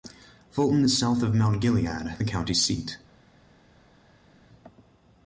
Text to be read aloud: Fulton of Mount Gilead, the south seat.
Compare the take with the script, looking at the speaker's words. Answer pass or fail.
fail